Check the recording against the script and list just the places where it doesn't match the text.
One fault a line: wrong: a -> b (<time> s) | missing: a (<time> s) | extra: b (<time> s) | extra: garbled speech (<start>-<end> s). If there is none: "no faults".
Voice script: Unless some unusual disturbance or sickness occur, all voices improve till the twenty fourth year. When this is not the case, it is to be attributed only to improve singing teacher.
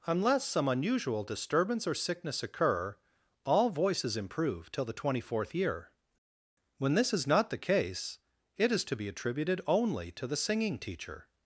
wrong: improve -> the (10.2 s)